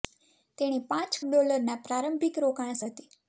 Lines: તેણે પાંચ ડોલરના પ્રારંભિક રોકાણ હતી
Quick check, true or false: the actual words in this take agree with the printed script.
true